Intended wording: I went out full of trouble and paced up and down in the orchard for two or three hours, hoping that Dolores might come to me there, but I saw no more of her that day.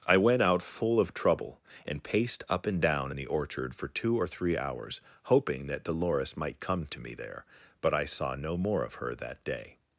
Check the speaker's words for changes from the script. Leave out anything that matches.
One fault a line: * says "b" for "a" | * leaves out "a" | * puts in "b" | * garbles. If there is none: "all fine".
all fine